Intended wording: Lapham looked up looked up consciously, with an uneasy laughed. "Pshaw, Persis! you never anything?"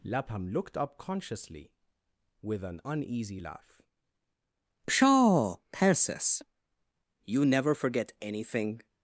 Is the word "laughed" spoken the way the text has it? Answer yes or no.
no